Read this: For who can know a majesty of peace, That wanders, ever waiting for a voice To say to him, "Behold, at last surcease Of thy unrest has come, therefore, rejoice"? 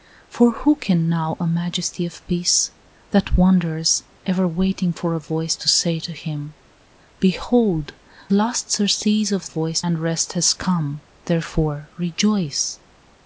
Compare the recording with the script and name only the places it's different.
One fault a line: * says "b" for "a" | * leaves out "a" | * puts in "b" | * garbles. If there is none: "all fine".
* leaves out "at"
* says "voice" for "thy"